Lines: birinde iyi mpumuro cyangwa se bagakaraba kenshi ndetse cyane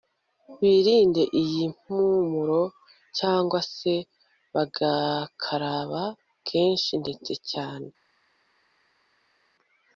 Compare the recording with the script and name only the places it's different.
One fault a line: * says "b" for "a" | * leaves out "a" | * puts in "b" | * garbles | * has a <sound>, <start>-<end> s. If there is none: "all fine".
all fine